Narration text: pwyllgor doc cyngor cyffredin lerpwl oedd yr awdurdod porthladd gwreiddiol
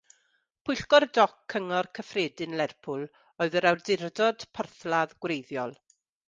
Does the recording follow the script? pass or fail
pass